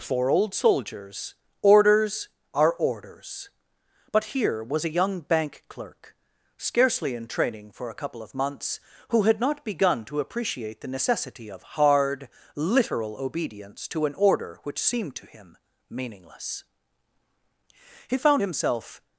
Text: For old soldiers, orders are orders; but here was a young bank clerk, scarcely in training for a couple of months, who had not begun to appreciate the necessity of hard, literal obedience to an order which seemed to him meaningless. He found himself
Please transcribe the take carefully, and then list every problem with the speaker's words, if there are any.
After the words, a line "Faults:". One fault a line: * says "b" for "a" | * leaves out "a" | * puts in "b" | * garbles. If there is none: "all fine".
For old soldiers, orders are orders; but here was a young bank clerk, scarcely in training for a couple of months, who had not begun to appreciate the necessity of hard, literal obedience to an order which seemed to him meaningless. He found himself
Faults:
all fine